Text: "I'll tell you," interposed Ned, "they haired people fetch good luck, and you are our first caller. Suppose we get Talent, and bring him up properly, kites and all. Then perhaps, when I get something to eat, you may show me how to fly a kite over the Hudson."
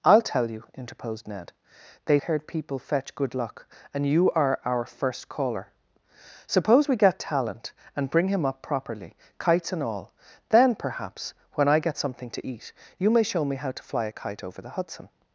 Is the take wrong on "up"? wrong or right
right